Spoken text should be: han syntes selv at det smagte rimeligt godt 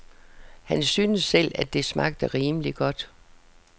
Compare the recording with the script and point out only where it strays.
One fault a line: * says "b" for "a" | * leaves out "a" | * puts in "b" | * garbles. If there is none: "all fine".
all fine